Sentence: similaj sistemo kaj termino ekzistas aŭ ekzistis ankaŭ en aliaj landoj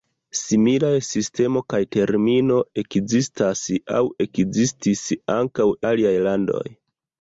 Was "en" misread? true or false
true